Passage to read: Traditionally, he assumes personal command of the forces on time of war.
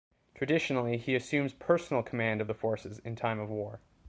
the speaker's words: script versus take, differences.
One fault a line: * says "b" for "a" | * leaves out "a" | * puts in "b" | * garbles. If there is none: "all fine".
* says "in" for "on"